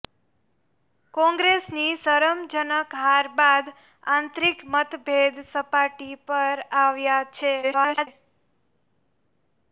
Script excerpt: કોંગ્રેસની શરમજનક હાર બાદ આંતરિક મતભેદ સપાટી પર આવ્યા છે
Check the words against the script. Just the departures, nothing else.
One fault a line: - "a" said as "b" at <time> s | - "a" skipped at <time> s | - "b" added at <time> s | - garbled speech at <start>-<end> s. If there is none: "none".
- garbled speech at 7.6-8.1 s